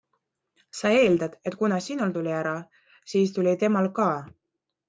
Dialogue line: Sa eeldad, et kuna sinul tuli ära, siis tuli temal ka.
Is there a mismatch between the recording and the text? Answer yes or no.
no